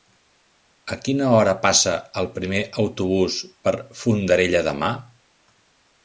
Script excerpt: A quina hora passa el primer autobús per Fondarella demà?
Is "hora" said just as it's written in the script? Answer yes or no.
yes